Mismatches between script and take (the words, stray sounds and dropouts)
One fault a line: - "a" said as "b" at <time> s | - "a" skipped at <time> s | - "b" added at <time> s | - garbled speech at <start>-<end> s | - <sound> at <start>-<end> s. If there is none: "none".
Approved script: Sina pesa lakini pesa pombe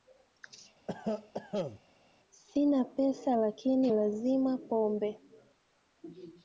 - cough at 0.9-1.8 s
- "pesa" said as "lazima" at 3.9 s